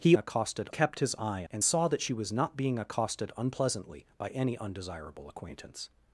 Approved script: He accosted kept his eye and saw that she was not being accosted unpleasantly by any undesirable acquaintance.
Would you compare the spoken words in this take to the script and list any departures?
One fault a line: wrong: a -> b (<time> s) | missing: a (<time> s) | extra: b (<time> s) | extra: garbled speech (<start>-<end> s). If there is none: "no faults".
no faults